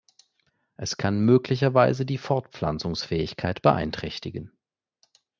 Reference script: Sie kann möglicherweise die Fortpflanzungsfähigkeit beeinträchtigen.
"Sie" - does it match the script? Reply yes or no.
no